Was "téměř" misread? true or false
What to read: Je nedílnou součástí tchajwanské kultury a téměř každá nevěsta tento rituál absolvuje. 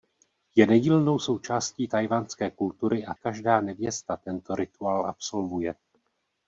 true